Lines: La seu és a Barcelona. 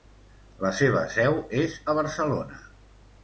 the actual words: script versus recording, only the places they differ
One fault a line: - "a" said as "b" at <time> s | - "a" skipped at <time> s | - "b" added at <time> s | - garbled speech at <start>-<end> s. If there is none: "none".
- "seva" added at 0.8 s